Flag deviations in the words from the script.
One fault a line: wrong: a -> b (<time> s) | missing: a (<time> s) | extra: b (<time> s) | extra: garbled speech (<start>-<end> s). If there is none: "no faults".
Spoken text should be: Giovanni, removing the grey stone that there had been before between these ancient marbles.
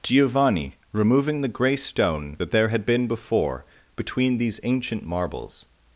no faults